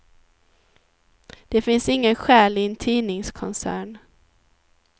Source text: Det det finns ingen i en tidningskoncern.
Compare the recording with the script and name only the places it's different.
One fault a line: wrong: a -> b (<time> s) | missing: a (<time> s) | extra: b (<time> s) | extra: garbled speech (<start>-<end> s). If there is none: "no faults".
missing: det (1.6 s)
extra: själ (2.1 s)